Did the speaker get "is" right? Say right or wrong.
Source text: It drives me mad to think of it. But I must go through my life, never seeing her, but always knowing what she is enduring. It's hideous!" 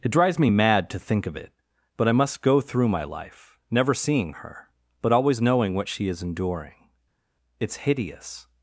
right